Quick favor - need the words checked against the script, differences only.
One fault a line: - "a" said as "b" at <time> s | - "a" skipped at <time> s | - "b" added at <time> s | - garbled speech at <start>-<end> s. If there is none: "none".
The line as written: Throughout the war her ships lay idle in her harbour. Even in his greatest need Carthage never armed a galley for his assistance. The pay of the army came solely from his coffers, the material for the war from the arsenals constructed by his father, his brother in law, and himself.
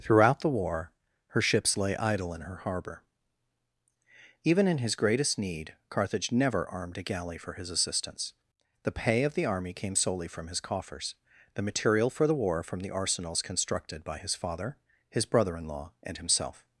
none